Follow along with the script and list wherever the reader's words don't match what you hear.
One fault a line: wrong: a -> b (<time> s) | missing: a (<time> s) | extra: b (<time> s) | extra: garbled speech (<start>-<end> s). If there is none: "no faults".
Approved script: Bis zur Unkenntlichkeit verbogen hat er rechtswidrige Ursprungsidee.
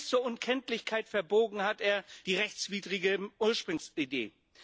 extra: die (2.2 s)